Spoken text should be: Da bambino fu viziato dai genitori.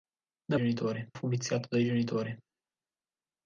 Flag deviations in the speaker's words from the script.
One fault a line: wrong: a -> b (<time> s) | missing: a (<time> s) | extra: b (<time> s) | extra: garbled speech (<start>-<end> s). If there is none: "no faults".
wrong: bambino -> genitori (0.5 s)